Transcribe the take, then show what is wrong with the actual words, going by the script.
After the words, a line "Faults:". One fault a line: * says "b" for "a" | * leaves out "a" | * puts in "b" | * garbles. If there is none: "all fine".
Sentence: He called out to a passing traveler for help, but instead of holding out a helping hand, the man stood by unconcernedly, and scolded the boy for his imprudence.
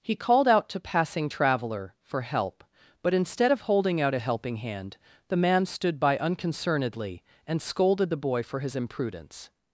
He called out to passing traveler for help, but instead of holding out a helping hand, the man stood by unconcernedly, and scolded the boy for his imprudence.
Faults:
* leaves out "a"